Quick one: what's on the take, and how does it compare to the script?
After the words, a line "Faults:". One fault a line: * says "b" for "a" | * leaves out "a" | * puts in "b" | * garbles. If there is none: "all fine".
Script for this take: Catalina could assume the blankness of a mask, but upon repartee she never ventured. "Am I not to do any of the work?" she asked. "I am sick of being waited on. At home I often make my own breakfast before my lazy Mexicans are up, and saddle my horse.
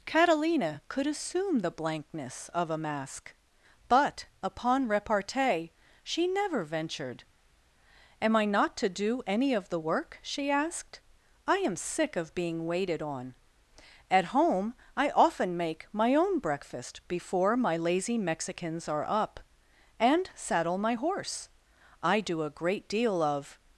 Catalina could assume the blankness of a mask, but upon repartee she never ventured. "Am I not to do any of the work?" she asked. "I am sick of being waited on. At home I often make my own breakfast before my lazy Mexicans are up, and saddle my horse. I do a great deal of
Faults:
* puts in "I do a great deal of"